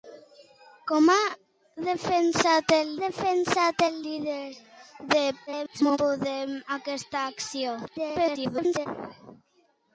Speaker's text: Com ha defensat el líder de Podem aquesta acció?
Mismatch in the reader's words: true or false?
true